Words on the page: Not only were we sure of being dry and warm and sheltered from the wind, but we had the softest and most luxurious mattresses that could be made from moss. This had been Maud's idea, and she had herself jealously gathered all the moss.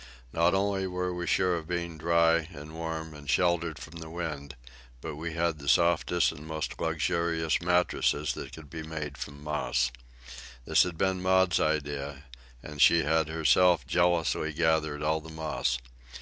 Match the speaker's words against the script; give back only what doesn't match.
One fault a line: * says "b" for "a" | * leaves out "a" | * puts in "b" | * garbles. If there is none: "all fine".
all fine